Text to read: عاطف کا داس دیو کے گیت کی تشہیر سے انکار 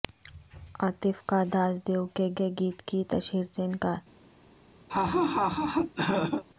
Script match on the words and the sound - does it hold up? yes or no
no